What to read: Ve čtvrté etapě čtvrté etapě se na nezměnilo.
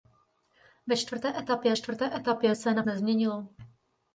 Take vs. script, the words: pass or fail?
pass